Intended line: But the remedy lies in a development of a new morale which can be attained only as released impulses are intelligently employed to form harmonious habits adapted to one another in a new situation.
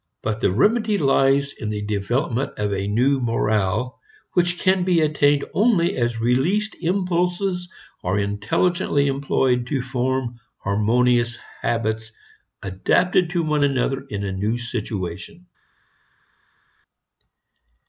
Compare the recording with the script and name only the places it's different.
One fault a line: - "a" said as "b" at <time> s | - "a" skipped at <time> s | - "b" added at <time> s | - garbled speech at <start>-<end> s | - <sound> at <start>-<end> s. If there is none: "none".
- "a" said as "the" at 1.7 s